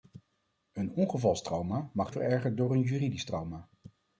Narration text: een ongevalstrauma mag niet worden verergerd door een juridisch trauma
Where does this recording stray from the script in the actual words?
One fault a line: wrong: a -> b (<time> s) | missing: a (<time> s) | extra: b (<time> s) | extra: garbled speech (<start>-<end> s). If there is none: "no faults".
missing: niet worden (2.1 s)